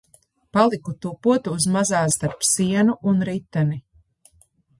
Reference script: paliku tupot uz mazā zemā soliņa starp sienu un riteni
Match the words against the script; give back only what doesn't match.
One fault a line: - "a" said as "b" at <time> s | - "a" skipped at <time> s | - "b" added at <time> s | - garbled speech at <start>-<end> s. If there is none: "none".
- "zemā soliņa" skipped at 2.0 s